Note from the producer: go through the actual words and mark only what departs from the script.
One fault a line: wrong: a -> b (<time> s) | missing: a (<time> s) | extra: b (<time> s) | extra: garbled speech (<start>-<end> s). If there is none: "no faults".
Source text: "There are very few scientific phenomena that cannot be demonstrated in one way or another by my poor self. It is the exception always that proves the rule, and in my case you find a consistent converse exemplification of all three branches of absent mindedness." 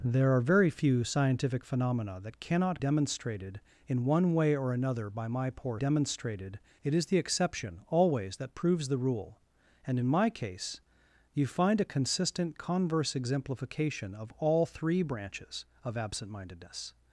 missing: be (2.8 s)
wrong: self -> demonstrated (5.7 s)